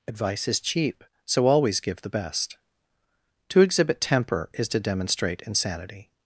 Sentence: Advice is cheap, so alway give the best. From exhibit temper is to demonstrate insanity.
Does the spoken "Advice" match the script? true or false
true